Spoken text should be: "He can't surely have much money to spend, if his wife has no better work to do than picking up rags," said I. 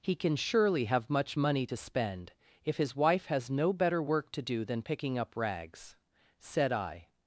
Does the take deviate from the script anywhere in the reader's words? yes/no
yes